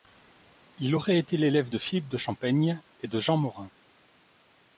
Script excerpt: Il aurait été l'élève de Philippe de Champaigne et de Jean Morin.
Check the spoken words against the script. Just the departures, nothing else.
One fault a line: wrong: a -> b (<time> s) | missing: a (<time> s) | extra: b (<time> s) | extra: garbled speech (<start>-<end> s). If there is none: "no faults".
no faults